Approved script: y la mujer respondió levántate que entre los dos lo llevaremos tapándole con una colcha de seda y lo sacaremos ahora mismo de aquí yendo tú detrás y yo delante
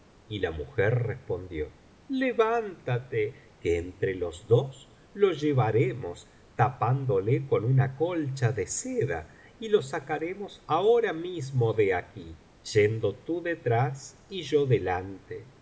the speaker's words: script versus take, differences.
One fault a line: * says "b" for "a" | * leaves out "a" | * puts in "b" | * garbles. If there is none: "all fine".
all fine